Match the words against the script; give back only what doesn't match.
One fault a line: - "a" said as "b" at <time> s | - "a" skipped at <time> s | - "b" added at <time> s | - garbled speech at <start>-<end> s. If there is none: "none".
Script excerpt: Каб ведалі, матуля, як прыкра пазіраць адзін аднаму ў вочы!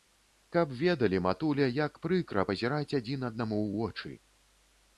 none